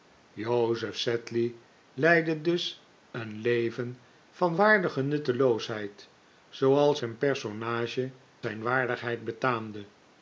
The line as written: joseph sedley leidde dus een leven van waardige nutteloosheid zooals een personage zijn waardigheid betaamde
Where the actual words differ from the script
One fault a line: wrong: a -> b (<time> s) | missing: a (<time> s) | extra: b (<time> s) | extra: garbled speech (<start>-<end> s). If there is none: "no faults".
no faults